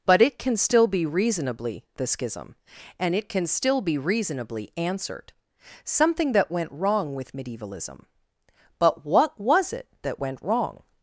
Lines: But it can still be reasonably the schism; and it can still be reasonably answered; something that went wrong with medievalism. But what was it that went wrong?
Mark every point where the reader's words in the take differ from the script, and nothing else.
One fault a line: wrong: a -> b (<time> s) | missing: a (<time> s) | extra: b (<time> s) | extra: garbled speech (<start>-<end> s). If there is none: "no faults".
no faults